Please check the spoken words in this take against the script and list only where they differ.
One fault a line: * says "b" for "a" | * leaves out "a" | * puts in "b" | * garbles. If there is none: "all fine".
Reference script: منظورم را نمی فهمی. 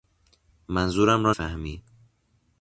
* leaves out "نمی"